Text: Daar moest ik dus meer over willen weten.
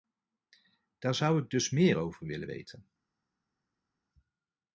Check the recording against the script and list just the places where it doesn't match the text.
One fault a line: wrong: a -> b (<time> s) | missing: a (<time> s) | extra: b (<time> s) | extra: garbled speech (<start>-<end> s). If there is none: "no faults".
wrong: moest -> zou (1.1 s)